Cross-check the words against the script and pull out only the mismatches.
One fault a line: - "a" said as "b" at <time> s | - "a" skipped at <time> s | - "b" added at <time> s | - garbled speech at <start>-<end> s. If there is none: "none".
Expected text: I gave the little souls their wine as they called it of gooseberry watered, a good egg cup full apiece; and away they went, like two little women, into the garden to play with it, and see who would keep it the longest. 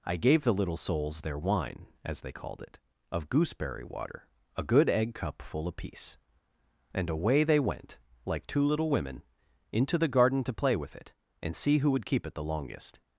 - "watered" said as "water" at 3.8 s